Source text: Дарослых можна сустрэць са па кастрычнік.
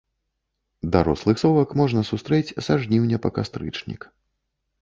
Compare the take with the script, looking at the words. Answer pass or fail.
fail